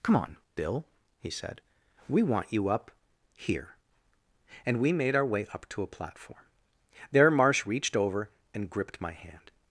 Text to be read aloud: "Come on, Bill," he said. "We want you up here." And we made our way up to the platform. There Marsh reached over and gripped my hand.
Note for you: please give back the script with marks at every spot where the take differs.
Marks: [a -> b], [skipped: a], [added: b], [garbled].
"Come on, Bill," he said. "We want you up here." And we made our way up to [the -> a] platform. There Marsh reached over and gripped my hand.